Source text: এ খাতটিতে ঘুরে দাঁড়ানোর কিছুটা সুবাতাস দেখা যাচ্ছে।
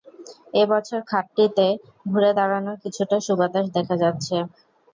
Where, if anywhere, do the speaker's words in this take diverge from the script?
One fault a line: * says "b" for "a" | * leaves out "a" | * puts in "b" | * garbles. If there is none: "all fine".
* puts in "বছর"